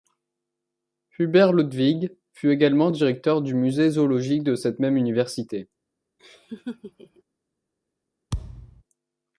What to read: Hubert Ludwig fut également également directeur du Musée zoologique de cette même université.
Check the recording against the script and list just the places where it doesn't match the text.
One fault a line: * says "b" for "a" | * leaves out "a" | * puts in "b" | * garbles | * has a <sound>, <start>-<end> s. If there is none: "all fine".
* leaves out "également"
* has a laugh, 6.2-7.2 s
* has a thud, 8.3-8.8 s